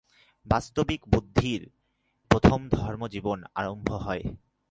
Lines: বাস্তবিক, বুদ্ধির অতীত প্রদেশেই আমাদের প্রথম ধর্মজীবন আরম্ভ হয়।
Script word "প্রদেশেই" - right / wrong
wrong